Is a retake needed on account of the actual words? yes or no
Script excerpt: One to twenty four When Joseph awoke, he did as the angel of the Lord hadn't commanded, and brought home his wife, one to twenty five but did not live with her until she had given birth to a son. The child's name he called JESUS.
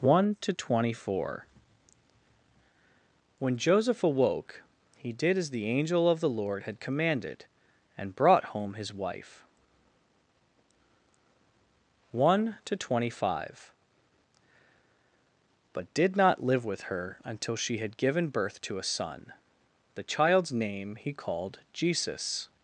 yes